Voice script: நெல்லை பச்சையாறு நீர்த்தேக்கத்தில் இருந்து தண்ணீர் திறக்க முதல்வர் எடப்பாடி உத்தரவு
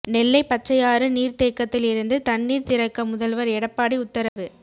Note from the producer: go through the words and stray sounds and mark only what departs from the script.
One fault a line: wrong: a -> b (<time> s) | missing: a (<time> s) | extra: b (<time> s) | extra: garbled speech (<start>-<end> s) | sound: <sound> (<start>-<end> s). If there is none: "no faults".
sound: dropout (4.3-4.4 s)